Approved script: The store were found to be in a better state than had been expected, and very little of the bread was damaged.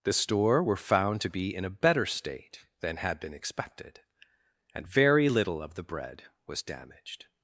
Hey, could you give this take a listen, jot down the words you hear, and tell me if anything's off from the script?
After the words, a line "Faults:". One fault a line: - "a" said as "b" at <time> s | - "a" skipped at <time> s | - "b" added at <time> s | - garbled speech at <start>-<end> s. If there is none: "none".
The store were found to be in a better state than had been expected, and very little of the bread was damaged.
Faults:
none